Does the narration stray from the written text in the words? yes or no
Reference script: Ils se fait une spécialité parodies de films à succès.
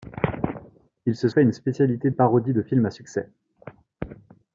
no